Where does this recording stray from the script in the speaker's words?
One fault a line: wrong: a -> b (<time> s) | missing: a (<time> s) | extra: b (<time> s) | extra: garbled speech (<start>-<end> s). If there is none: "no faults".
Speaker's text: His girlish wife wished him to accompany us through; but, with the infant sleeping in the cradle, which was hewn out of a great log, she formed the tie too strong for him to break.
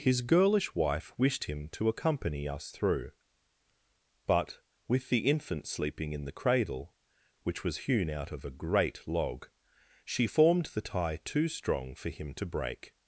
no faults